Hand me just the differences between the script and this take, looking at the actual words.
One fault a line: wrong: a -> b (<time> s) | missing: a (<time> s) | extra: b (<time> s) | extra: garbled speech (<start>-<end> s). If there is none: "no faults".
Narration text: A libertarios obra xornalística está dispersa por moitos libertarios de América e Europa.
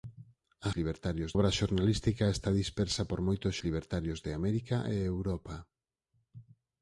no faults